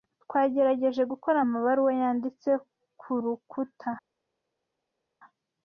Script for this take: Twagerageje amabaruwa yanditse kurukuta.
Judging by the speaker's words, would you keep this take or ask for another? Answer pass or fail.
fail